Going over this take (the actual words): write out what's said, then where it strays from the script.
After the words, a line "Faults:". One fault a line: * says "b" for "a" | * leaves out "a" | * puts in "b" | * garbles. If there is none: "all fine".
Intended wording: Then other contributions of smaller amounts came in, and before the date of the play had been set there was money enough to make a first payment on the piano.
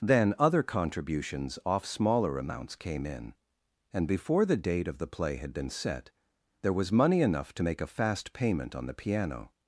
Then other contributions off smaller amounts came in, and before the date of the play had been set there was money enough to make a fast payment on the piano.
Faults:
* says "off" for "of"
* says "fast" for "first"